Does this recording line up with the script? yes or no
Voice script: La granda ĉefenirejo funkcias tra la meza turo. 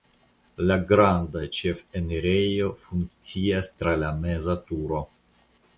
yes